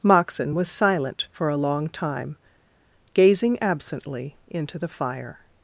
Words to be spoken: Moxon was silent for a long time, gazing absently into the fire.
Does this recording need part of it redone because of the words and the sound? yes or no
no